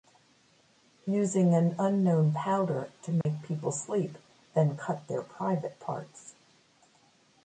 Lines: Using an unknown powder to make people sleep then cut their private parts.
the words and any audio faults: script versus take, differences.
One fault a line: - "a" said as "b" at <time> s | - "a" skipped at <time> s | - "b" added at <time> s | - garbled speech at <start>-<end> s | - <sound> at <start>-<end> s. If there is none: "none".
- dropout at 3.2-3.3 s